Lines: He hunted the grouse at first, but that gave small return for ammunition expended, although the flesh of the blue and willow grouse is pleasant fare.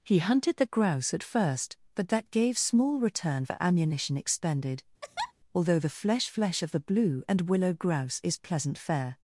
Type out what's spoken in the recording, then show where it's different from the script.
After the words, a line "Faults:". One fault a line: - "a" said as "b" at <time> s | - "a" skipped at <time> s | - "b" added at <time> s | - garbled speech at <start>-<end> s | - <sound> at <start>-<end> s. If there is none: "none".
He hunted the grouse at first, but that gave small return for ammunition expended, although the flesh flesh of the blue and willow grouse is pleasant fare.
Faults:
- laugh at 5.0-5.3 s
- "flesh" added at 6.3 s